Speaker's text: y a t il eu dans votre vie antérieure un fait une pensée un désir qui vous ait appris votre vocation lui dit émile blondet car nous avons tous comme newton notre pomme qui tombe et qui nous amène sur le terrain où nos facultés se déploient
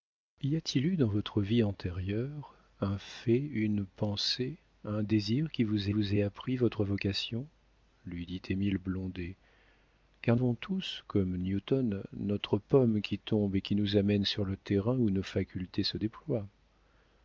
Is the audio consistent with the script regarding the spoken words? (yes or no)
no